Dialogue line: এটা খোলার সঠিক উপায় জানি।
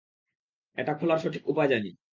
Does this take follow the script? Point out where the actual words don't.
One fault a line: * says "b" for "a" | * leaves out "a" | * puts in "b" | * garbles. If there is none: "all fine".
all fine